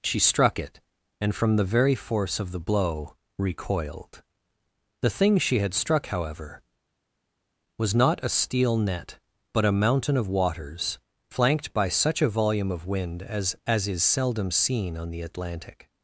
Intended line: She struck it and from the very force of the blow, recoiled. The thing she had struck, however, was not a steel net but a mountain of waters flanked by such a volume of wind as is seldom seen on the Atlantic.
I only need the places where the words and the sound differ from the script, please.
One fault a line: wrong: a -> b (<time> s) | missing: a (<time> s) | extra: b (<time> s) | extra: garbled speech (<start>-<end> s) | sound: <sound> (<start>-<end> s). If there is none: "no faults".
extra: as (13.7 s)